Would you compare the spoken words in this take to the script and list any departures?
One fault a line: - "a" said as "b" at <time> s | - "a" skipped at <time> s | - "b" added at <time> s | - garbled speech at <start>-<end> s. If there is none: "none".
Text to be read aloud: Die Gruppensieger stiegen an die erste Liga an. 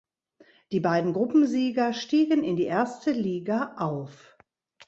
- "beiden" added at 0.8 s
- "an" said as "in" at 2.4 s
- "an" said as "auf" at 3.8 s